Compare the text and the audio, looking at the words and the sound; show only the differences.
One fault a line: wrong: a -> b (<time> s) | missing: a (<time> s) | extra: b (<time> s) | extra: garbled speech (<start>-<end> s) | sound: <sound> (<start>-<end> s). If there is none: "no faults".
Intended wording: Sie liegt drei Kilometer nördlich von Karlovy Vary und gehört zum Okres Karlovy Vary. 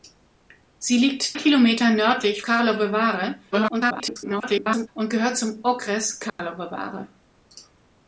missing: drei (1.4 s)
missing: von (2.4 s)
extra: garbled speech (3.5-4.9 s)
sound: dropout (6.3-6.4 s)